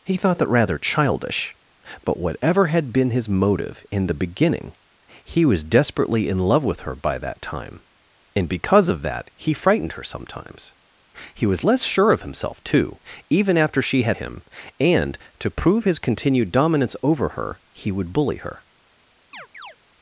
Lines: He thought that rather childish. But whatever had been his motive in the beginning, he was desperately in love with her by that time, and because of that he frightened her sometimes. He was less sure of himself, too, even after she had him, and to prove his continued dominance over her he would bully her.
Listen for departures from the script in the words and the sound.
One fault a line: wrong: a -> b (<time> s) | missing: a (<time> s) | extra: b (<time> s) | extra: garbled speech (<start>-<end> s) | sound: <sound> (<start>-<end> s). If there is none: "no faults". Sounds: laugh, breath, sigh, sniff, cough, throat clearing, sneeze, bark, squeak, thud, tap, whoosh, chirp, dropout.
sound: chirp (19.3-19.8 s)